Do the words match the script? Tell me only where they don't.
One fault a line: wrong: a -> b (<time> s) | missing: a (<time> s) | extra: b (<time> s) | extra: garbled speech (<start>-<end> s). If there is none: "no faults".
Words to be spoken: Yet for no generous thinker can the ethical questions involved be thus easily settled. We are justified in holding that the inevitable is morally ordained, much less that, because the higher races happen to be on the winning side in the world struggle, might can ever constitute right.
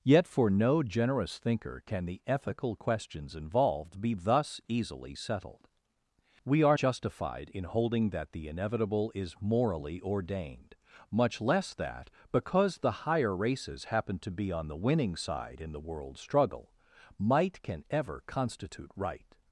no faults